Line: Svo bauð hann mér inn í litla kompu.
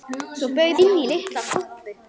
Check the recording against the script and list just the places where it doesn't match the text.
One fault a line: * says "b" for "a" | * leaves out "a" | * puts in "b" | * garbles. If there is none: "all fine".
* leaves out "hann mér"